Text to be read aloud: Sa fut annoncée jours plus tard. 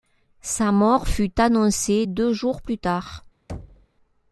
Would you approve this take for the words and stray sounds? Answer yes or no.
no